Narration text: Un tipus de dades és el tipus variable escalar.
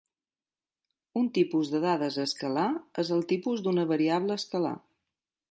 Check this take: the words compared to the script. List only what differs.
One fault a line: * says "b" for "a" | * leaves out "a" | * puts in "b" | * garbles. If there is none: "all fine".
* puts in "escalar"
* puts in "d'una"